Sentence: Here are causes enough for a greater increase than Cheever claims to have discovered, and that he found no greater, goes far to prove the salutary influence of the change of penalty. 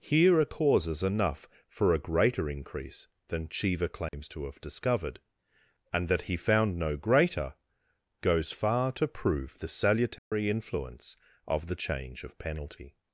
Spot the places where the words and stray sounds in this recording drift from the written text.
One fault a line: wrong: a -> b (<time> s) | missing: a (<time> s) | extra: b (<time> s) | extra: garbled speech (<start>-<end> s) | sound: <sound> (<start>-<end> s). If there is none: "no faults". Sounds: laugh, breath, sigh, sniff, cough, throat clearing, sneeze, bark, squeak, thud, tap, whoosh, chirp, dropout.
sound: dropout (4.1-4.1 s)
sound: dropout (10.2-10.3 s)